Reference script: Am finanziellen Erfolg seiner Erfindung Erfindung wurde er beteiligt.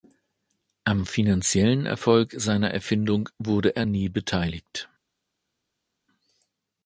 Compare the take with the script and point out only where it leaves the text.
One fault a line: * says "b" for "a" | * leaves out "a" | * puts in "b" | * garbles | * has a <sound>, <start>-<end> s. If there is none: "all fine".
* leaves out "Erfindung"
* puts in "nie"